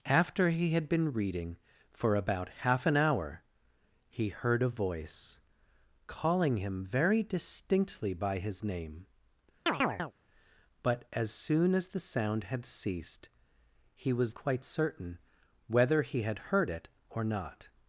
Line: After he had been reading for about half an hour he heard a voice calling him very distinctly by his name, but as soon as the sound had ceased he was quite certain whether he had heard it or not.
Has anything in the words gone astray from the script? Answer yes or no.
no